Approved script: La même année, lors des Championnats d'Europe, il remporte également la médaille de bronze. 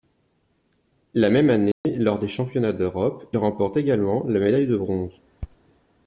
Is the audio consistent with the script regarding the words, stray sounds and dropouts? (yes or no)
no